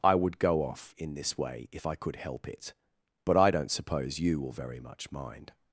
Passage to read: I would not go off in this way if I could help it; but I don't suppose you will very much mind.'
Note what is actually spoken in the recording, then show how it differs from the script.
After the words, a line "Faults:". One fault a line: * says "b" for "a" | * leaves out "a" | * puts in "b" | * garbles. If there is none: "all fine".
I would go off in this way if I could help it; but I don't suppose you will very much mind.'
Faults:
* leaves out "not"